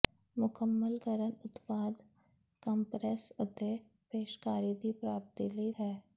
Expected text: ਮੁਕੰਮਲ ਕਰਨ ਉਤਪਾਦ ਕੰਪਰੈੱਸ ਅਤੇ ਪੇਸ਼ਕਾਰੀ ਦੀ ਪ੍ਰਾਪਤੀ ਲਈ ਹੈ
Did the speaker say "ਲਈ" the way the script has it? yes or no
yes